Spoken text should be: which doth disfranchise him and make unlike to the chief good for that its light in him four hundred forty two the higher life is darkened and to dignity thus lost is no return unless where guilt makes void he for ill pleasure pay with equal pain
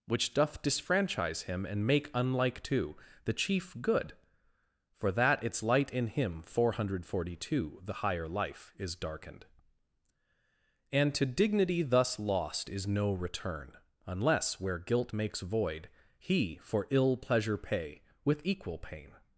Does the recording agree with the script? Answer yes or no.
yes